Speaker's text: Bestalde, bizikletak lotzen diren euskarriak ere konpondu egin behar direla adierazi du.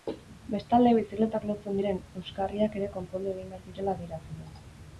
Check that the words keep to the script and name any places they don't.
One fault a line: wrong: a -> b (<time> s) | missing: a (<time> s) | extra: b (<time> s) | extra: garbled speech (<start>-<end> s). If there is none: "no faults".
no faults